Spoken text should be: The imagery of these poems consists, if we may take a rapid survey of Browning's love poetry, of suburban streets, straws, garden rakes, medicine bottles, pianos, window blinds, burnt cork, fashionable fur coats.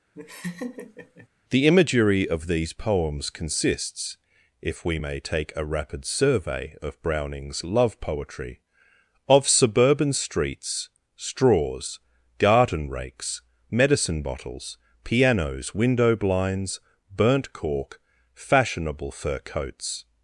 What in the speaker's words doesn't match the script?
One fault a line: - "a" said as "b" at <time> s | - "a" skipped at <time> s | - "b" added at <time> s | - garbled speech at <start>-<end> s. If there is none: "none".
none